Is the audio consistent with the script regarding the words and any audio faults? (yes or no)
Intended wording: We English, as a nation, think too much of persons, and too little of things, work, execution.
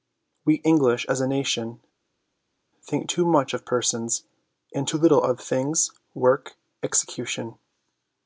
yes